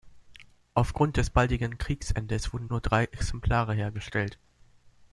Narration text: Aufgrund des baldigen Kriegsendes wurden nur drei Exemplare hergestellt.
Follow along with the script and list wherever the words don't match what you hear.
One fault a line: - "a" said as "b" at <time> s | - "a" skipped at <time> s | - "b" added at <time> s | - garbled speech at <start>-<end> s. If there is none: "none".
none